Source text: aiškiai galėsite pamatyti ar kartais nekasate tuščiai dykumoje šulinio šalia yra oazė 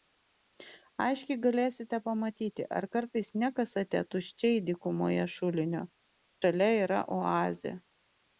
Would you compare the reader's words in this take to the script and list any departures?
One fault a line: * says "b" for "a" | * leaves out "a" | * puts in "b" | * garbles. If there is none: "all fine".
all fine